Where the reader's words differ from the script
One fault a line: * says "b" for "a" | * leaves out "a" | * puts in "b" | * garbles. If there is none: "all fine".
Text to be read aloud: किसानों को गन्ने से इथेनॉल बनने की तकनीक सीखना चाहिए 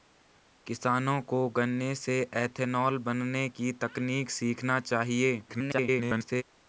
* garbles